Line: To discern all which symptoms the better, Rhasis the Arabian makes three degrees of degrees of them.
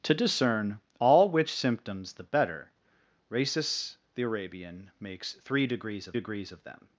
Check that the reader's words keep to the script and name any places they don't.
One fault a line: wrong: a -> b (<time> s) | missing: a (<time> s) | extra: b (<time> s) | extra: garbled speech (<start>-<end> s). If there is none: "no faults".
no faults